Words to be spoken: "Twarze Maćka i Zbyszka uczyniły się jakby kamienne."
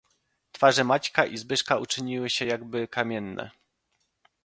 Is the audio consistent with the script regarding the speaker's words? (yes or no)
yes